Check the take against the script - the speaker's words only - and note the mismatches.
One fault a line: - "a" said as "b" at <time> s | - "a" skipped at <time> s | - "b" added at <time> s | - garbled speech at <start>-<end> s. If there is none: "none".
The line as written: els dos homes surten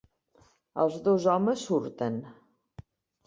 none